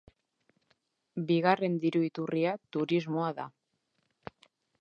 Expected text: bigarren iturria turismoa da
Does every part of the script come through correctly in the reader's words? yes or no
no